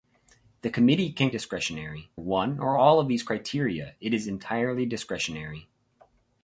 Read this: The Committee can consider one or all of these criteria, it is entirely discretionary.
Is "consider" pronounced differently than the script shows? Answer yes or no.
yes